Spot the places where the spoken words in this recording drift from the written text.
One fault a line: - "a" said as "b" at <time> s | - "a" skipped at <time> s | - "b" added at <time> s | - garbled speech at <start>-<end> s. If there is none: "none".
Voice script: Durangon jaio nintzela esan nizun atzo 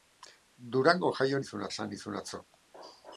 - "nintzela" said as "nizun" at 1.4 s